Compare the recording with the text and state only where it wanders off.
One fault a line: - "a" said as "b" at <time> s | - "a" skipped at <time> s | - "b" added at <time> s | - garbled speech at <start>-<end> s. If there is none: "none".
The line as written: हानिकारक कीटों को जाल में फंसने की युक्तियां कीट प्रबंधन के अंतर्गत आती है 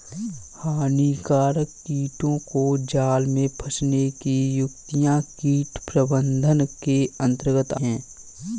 - "आती" skipped at 7.7 s